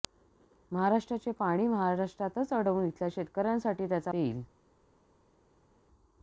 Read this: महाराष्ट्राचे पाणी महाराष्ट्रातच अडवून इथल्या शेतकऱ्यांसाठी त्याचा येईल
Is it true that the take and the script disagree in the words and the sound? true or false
false